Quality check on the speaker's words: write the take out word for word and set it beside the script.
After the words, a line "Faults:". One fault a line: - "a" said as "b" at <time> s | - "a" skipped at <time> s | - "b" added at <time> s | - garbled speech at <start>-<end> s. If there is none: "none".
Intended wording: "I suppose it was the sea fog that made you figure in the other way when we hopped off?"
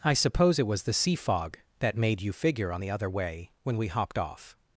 "I suppose it was the sea fog that made you figure on the other way when we hopped off?"
Faults:
- "in" said as "on" at 2.7 s